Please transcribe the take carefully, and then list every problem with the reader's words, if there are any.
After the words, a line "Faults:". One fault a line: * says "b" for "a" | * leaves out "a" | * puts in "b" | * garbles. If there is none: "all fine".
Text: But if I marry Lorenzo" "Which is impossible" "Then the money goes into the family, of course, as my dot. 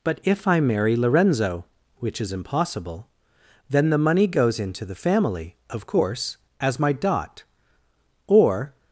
But if I marry Lorenzo" "Which is impossible" "Then the money goes into the family, of course, as my dot. Or
Faults:
* puts in "Or"